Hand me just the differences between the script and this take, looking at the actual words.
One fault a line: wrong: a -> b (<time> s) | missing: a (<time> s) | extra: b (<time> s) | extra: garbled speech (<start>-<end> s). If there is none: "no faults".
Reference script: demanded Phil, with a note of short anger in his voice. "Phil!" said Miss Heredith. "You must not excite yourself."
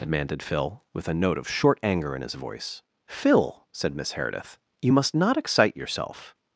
no faults